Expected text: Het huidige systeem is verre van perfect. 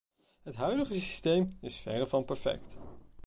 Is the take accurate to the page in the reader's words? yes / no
yes